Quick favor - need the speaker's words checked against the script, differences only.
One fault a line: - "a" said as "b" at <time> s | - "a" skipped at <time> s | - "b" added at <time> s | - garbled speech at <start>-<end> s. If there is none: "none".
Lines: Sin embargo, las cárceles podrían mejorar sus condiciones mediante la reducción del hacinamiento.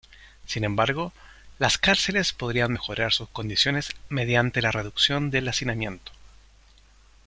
none